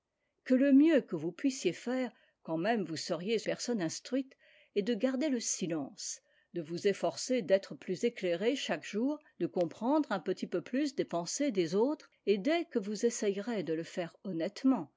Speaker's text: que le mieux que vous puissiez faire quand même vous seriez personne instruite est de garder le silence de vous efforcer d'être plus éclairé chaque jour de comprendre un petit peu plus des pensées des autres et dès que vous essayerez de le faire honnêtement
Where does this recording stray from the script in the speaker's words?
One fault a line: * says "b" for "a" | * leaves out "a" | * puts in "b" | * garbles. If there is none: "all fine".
all fine